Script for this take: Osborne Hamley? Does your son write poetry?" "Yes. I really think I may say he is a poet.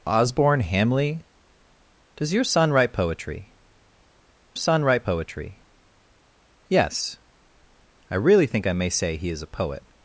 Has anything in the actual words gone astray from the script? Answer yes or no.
yes